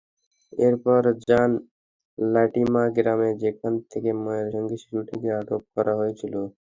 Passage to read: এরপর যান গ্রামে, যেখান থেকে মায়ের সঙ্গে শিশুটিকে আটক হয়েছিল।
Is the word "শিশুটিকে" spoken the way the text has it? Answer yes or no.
yes